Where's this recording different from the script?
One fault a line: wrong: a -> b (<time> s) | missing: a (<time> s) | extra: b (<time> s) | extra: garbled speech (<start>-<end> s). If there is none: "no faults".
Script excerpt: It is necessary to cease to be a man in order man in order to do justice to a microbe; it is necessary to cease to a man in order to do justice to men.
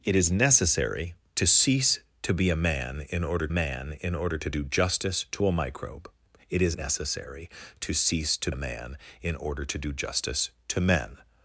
no faults